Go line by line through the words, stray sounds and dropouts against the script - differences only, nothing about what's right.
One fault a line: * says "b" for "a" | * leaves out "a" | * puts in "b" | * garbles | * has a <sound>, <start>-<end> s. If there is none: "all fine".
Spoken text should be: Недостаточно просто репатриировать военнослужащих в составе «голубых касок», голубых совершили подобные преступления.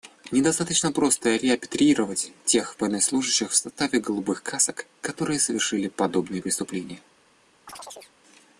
* puts in "тех"
* says "которые" for "голубых"
* has a chirp, 7.7-8.1 s